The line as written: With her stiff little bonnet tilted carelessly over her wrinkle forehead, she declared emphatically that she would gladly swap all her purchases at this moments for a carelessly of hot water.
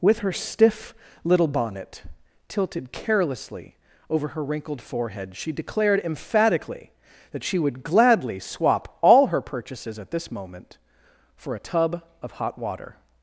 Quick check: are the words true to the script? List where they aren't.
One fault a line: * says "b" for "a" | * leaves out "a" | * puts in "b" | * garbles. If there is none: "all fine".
* says "wrinkled" for "wrinkle"
* says "moment" for "moments"
* says "tub" for "carelessly"